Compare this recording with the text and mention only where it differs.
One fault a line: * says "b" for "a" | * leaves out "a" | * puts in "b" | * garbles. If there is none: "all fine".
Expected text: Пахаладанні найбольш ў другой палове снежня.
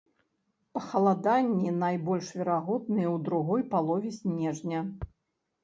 * puts in "верагодныя"